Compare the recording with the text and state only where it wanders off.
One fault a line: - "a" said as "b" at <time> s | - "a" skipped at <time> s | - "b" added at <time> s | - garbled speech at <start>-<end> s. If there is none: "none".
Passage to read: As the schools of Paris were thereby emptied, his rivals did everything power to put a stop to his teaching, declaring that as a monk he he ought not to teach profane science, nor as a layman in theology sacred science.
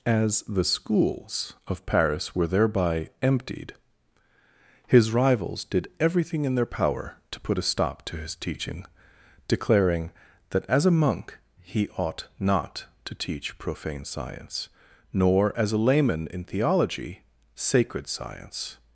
- "in their" added at 6.4 s
- "he" skipped at 11.9 s